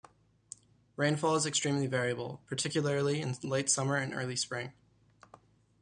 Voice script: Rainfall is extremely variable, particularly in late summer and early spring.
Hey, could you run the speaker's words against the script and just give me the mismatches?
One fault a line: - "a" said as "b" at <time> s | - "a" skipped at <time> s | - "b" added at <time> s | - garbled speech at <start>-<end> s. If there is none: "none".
none